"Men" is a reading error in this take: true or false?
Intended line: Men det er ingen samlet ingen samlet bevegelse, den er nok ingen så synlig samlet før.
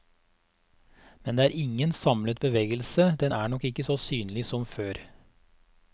false